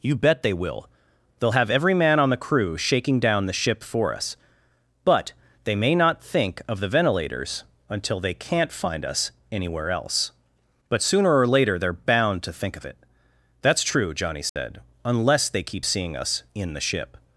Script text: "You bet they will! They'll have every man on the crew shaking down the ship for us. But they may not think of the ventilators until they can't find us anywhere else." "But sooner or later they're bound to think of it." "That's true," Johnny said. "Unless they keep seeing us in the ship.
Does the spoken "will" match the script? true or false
true